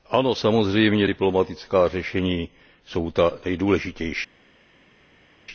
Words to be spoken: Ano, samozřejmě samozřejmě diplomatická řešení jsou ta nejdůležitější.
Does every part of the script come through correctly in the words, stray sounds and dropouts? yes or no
no